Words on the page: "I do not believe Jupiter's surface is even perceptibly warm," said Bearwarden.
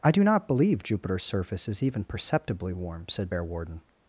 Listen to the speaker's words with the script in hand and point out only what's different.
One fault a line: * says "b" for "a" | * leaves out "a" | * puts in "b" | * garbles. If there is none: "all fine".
all fine